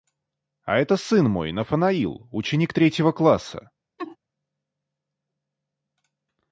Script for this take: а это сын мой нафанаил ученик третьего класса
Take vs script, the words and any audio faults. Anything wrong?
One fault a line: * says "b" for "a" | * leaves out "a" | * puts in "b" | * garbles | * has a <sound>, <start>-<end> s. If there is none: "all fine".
* has a laugh, 4.0-4.2 s